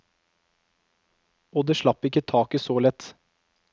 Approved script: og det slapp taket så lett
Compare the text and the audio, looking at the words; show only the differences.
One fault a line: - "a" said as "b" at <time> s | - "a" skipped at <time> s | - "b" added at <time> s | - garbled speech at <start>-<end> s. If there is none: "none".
- "ikke" added at 2.1 s